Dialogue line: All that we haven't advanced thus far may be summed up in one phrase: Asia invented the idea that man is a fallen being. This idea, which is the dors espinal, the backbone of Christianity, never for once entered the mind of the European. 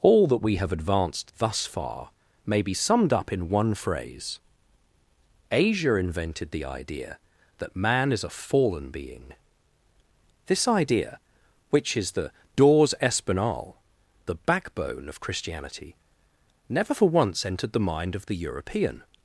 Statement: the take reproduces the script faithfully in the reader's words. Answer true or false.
false